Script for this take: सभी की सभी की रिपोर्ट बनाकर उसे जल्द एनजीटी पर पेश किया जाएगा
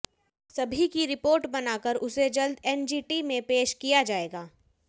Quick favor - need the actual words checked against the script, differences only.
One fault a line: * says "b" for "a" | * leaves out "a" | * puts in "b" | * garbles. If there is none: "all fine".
* leaves out "सभी की"
* says "में" for "पर"